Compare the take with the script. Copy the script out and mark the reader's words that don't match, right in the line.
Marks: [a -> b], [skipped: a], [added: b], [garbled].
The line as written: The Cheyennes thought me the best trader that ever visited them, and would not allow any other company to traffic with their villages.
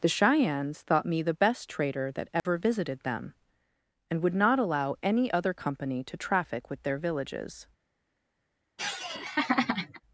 The Cheyennes thought me the best trader that ever visited them, and would not allow any other company to traffic with their villages.